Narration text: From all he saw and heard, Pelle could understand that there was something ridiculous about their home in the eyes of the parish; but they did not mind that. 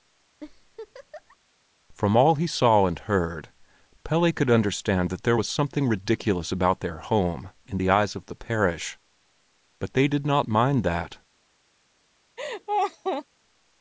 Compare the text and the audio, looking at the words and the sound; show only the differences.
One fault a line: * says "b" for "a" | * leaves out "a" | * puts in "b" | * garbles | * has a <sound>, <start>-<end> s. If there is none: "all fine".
* has a laugh, 0.4-1.4 s
* has a laugh, 12.4-13.2 s